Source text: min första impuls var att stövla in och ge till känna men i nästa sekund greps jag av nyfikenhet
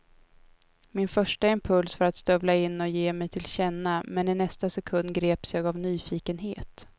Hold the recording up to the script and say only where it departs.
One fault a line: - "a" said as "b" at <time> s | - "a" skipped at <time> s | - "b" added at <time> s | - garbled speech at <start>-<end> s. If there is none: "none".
- "mig" added at 3.1 s